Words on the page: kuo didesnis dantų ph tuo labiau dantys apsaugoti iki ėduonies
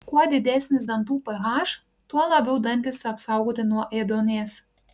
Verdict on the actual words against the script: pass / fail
fail